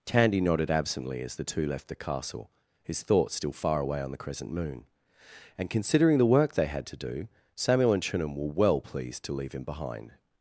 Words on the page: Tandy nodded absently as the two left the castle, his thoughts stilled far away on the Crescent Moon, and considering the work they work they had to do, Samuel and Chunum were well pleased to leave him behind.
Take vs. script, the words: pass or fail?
fail